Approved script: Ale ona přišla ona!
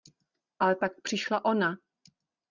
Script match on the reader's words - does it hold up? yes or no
no